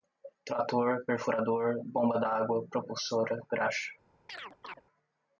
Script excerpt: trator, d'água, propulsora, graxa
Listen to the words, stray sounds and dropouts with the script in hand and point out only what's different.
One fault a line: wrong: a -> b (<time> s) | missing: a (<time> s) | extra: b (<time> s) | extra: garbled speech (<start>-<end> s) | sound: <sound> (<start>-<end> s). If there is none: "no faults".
extra: perfurador bomba (1.1 s)
sound: chirp (4.3-4.8 s)